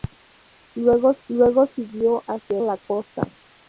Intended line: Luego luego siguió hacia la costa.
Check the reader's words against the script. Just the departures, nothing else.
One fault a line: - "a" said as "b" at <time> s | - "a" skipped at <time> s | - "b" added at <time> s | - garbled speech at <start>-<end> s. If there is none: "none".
none